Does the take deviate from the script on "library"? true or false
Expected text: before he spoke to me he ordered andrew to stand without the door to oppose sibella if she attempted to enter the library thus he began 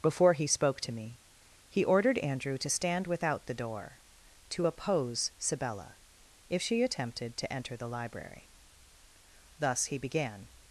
false